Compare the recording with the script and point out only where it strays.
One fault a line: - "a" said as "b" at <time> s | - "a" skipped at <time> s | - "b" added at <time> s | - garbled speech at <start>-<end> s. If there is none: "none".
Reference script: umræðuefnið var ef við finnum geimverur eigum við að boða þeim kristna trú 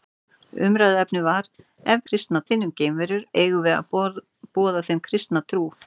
- "við" said as "kristna" at 2.1 s